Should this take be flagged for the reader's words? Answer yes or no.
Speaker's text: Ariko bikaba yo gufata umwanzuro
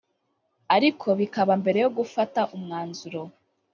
yes